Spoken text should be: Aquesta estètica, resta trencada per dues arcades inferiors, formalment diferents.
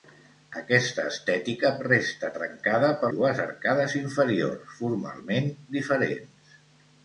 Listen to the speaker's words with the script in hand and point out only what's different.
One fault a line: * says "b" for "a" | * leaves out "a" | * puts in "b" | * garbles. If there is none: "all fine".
all fine